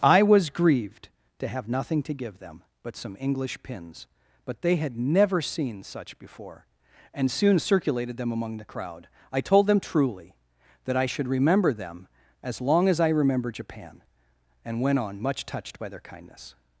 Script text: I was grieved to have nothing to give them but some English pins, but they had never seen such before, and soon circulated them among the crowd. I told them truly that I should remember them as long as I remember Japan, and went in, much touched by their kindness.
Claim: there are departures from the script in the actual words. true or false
true